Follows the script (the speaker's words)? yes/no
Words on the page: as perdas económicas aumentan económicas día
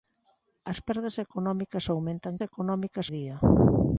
yes